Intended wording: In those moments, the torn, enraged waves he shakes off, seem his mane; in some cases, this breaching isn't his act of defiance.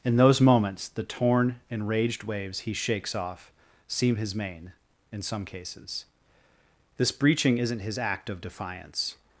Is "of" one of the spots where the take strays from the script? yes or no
no